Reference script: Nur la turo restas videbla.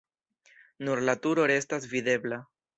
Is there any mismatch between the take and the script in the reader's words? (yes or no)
no